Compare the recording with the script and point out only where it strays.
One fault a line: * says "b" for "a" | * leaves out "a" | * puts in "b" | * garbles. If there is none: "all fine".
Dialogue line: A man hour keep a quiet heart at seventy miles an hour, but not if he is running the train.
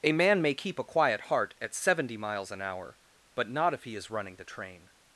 * says "may" for "hour"